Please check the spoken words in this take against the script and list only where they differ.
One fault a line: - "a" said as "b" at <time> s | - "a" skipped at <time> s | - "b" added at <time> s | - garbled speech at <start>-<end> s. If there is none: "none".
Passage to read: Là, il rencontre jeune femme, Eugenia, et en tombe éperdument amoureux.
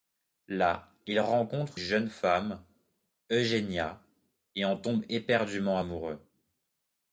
none